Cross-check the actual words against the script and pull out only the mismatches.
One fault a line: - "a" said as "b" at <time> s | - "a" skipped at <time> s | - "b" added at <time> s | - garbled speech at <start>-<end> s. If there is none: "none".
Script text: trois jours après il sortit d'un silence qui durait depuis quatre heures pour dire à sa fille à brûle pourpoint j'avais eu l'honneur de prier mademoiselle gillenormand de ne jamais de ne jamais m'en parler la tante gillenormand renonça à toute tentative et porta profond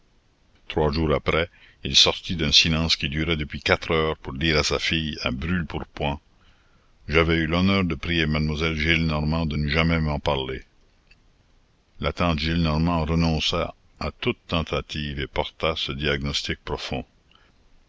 - "de ne jamais" skipped at 10.0 s
- "ce diagnostic" added at 15.8 s